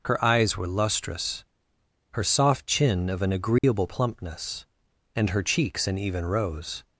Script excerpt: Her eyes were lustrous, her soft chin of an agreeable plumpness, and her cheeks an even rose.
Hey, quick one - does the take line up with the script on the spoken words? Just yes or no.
yes